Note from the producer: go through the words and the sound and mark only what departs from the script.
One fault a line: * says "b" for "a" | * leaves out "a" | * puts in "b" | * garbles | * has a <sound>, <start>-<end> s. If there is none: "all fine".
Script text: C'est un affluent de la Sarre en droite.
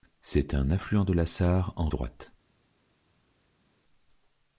all fine